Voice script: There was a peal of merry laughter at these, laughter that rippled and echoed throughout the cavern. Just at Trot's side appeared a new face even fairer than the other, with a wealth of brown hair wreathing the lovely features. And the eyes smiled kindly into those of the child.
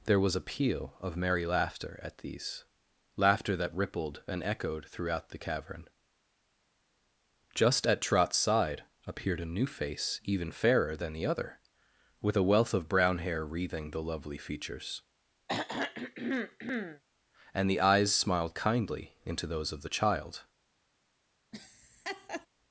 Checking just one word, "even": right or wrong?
right